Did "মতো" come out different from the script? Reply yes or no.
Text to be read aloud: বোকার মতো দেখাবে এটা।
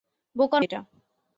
yes